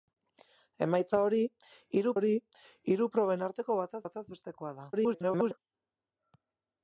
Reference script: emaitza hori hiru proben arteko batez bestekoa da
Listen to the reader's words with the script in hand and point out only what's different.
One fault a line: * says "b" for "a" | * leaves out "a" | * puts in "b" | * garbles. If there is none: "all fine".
* puts in "hori hiru"
* puts in "batez"
* garbles